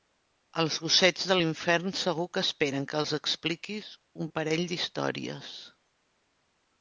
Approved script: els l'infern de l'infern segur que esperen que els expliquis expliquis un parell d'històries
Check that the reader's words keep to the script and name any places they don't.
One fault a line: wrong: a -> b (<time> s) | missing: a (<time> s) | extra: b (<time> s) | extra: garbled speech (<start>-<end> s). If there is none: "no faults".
wrong: l'infern -> gossets (0.8 s)
missing: expliquis (3.9 s)